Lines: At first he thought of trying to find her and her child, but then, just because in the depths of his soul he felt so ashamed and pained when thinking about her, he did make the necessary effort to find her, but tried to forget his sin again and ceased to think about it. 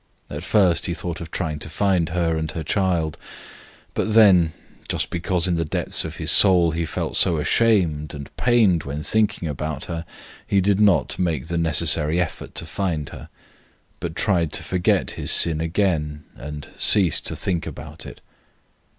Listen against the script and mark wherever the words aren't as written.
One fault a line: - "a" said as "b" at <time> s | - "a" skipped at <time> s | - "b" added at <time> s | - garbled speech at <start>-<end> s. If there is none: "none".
- "not" added at 10.8 s